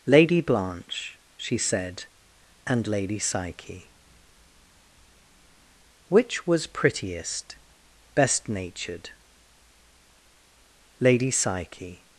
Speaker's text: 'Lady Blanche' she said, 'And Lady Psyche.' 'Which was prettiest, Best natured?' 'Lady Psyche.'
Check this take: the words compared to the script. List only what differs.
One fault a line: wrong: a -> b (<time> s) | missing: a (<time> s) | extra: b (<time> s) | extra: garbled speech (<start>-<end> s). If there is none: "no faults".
no faults